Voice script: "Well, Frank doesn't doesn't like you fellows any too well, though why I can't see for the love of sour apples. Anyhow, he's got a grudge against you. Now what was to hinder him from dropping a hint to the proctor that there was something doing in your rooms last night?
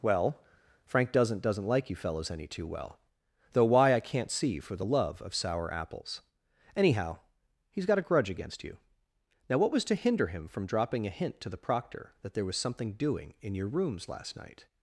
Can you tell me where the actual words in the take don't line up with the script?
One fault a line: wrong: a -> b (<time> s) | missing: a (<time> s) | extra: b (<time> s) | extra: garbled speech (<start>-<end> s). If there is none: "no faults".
no faults